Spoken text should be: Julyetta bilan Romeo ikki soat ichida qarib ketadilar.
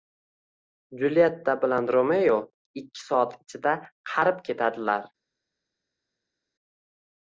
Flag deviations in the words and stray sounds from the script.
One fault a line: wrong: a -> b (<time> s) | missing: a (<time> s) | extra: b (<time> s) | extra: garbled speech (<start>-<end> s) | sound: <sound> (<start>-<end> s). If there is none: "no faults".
no faults